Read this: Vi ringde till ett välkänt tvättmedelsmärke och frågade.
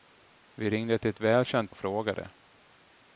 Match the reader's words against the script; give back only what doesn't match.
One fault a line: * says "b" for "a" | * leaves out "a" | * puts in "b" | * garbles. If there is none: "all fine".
* leaves out "tvättmedelsmärke"